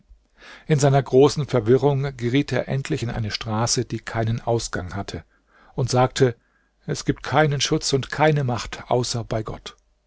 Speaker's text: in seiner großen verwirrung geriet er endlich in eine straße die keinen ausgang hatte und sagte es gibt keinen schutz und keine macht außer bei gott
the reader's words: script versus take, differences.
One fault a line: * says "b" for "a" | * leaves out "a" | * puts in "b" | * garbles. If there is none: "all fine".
all fine